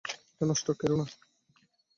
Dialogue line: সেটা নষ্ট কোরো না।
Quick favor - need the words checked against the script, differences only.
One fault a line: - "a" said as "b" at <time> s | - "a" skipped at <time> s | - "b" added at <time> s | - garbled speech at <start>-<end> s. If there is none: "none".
- "সেটা" said as "এটা" at 0.3 s